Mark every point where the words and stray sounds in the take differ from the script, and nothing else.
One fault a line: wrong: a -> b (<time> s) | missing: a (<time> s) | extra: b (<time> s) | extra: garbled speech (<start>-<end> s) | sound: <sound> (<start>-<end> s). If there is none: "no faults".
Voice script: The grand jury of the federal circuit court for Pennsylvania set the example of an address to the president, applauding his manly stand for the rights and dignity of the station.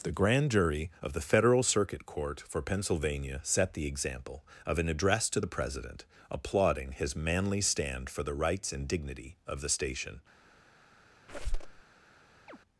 sound: squeak (11.3-11.8 s)
sound: chirp (12.5-12.6 s)